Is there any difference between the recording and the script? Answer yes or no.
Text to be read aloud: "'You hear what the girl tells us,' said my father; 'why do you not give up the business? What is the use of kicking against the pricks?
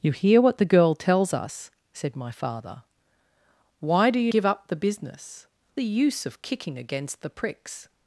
yes